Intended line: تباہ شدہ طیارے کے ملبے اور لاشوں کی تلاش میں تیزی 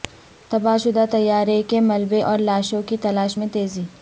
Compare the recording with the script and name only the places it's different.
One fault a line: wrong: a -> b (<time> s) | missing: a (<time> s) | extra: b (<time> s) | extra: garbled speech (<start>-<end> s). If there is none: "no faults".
no faults